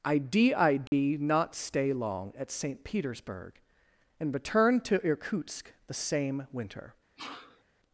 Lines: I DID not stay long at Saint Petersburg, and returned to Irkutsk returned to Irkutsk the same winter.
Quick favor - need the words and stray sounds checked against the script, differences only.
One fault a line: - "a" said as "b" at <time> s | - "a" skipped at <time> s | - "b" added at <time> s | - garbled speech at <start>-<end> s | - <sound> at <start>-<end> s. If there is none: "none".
- dropout at 0.9-0.9 s
- "returned to Irkutsk" skipped at 5.7 s
- sneeze at 7.2-7.6 s